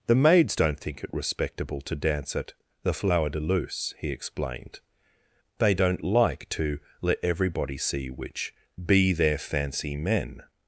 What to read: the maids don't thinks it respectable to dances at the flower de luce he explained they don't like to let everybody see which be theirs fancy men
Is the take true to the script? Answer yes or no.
no